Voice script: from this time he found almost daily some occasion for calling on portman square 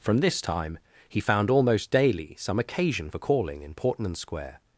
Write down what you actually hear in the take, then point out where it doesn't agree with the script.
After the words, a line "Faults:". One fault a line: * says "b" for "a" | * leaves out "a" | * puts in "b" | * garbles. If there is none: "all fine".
from this time he found almost daily some occasion for calling in portman square
Faults:
* says "in" for "on"